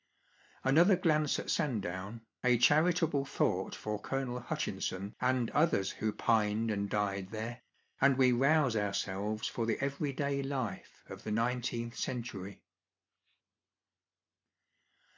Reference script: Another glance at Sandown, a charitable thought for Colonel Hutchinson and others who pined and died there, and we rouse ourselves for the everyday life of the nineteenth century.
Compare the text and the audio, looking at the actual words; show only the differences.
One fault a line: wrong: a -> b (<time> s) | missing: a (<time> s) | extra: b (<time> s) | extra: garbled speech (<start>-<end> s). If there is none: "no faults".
no faults